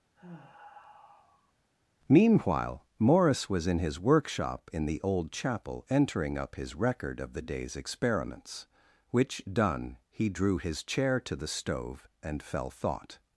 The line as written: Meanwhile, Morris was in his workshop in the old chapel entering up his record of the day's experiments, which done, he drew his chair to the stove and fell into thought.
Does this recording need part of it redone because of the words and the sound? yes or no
yes